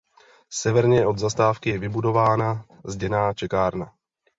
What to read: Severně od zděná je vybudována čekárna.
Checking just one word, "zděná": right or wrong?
wrong